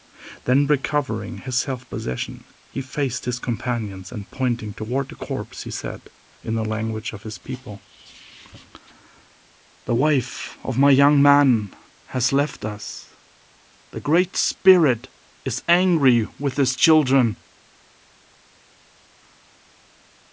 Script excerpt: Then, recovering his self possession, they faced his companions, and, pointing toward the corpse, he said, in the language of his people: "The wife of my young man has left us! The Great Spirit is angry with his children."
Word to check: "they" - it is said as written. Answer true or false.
false